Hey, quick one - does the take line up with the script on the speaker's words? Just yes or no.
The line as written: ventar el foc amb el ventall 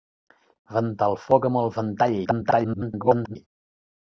no